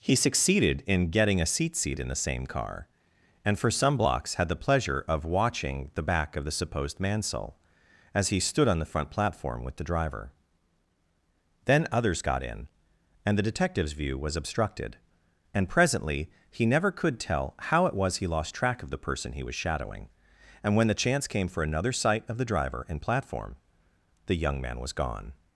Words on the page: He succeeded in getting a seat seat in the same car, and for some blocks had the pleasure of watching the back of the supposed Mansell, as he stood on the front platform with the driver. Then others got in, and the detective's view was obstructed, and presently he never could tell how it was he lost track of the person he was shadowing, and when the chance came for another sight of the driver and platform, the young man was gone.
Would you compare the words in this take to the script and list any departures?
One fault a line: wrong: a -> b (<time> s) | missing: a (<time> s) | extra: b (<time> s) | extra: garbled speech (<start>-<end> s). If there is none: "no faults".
no faults